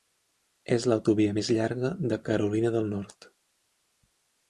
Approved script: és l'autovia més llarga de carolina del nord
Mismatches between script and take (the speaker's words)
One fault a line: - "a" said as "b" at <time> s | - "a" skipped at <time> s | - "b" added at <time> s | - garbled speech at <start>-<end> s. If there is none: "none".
none